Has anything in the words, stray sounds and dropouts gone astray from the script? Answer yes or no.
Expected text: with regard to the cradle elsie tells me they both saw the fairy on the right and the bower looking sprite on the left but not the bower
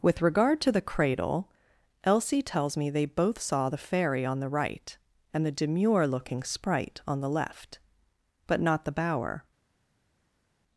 yes